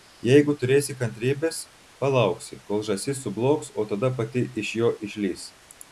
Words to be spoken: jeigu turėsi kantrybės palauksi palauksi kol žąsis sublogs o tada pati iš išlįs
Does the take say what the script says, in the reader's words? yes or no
no